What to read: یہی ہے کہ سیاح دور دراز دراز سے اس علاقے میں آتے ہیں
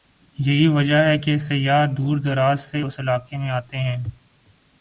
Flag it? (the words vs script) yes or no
yes